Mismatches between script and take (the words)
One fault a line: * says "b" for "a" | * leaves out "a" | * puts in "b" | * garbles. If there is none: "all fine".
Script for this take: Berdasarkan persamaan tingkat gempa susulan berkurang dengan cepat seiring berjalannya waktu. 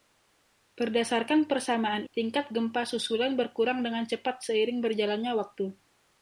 all fine